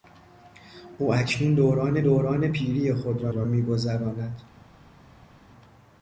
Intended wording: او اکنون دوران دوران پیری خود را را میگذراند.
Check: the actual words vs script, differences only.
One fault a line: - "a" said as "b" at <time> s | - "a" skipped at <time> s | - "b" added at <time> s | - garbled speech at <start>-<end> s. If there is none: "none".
none